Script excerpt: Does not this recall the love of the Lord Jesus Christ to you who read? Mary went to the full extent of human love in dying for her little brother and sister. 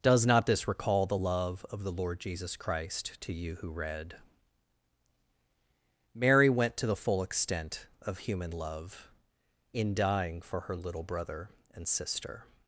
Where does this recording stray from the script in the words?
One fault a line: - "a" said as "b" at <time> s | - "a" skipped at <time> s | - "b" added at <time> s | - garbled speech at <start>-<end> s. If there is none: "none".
none